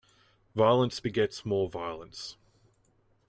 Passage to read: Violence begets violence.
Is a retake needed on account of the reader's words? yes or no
yes